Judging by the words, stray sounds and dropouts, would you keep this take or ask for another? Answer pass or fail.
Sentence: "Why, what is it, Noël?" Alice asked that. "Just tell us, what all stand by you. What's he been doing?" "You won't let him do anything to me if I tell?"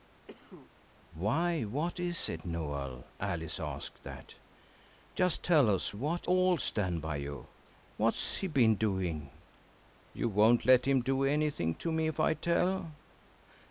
fail